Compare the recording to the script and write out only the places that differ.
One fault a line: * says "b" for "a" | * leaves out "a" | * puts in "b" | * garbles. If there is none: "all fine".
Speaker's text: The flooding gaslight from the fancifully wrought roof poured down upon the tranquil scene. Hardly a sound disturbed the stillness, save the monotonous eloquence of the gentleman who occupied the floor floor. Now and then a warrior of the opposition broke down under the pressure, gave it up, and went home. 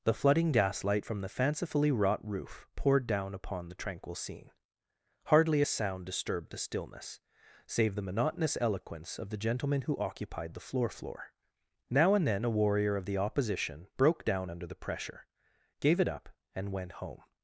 all fine